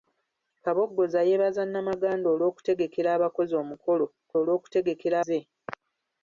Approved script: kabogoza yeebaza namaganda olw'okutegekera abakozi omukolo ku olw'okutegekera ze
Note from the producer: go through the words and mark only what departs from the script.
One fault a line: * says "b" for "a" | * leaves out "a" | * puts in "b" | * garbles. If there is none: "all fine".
all fine